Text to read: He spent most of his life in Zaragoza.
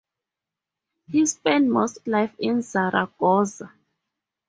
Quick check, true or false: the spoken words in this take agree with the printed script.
false